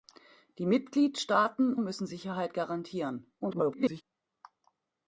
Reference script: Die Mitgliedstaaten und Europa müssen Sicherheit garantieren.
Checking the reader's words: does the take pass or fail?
fail